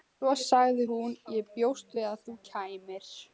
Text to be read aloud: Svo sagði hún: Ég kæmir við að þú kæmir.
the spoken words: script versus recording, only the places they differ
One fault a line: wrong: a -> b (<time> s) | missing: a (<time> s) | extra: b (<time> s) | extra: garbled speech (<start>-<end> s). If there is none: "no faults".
wrong: kæmir -> bjóst (1.6 s)